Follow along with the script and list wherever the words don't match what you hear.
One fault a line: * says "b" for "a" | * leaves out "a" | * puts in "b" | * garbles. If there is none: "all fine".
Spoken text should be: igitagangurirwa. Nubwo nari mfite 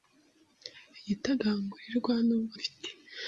* leaves out "nari"